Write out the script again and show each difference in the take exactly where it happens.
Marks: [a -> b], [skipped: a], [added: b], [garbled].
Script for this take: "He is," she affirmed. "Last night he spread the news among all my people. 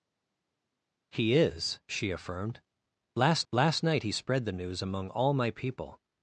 "He is," she affirmed. "Last [added: last] night he spread the news among all my people.